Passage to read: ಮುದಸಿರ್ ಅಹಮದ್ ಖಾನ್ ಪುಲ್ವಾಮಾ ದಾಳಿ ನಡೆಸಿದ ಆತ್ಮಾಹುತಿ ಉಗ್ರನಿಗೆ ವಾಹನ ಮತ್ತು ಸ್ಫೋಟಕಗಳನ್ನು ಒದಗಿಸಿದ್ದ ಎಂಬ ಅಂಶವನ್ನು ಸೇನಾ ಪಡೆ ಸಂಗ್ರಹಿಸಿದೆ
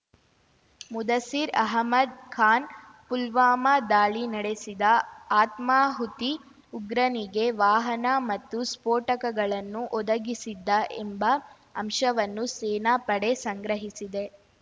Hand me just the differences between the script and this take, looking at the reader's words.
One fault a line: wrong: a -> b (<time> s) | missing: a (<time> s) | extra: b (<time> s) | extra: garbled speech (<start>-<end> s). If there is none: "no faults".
no faults